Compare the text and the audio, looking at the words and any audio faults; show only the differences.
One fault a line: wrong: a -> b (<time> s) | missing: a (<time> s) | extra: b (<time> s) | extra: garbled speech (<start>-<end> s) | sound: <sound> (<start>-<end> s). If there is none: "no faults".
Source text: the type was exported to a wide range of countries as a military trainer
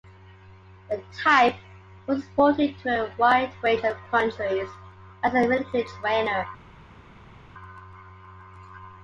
no faults